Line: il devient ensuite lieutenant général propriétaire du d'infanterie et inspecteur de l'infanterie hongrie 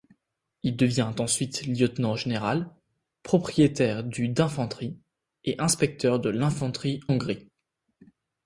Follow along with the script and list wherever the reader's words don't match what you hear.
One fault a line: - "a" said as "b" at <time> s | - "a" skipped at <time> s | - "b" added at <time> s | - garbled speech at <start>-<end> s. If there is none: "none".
none